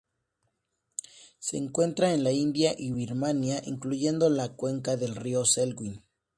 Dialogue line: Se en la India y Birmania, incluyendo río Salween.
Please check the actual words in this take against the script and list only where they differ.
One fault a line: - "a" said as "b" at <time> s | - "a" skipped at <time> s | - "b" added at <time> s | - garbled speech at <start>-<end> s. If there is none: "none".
- "encuentra" added at 1.6 s
- "la cuenca del" added at 4.3 s